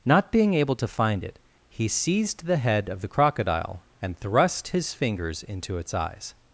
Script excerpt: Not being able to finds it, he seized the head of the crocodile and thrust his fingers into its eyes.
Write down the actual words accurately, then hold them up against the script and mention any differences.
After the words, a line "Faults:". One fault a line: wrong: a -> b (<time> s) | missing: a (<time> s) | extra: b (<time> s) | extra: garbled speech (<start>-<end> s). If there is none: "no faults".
Not being able to find it, he seized the head of the crocodile and thrust his fingers into its eyes.
Faults:
wrong: finds -> find (0.9 s)